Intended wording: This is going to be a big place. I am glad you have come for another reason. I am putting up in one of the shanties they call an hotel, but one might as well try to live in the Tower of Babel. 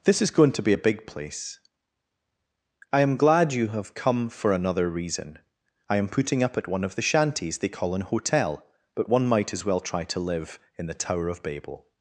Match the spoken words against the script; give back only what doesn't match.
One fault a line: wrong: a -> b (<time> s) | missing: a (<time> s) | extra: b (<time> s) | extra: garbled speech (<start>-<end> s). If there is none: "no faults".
wrong: in -> at (6.5 s)